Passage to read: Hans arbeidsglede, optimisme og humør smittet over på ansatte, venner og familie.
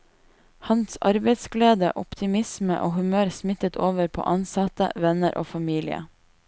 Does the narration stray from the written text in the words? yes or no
no